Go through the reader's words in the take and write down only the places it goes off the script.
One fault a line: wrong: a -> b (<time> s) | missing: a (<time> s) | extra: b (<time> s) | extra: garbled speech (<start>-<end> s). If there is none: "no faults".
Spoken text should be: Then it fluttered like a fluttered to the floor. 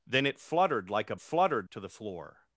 no faults